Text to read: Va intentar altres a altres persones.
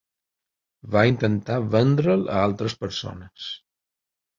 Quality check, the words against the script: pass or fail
fail